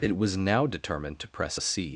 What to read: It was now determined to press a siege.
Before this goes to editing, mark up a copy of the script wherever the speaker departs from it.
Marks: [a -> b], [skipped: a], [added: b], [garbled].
It was now determined to press a siege.